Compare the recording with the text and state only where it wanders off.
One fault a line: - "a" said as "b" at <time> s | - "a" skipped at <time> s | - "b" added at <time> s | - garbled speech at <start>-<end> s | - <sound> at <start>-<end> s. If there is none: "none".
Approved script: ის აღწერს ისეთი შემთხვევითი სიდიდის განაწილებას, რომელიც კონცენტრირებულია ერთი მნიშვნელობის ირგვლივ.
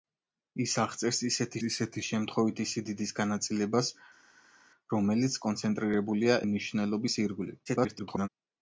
- "ისეთი" added at 1.7 s
- "ერთი" skipped at 6.4 s
- garbled speech at 7.7-8.3 s